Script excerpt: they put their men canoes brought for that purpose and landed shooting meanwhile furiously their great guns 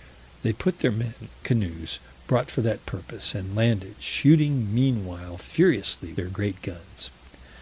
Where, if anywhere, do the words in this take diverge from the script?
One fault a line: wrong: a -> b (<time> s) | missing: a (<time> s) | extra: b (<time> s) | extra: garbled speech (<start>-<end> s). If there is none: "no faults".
no faults